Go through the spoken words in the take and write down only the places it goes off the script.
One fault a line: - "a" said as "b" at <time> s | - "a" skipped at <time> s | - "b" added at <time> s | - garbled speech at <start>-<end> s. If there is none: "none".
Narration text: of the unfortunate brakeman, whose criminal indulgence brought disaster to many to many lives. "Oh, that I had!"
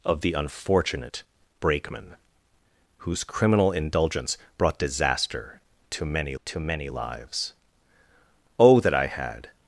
none